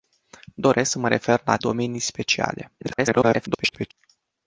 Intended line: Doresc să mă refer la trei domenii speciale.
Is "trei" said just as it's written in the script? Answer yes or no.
no